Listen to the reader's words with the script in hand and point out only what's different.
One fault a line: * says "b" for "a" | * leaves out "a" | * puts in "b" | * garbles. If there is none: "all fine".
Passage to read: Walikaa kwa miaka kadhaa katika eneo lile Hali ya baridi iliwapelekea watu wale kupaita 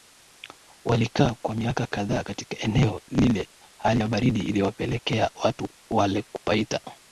all fine